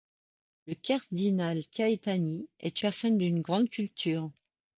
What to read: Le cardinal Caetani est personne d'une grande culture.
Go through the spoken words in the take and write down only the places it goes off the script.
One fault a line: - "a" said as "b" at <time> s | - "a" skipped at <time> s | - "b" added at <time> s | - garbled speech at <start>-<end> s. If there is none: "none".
none